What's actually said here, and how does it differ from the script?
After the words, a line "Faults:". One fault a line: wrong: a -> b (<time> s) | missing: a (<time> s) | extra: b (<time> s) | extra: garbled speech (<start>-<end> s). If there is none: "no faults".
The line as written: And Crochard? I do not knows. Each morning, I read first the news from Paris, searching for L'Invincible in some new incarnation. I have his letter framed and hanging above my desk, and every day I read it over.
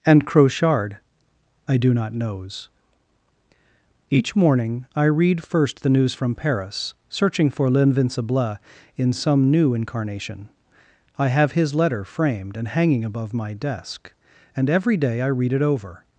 And Crochard? I do not knows. Each morning, I read first the news from Paris, searching for L'Invincible in some new incarnation. I have his letter framed and hanging above my desk, and every day I read it over.
Faults:
no faults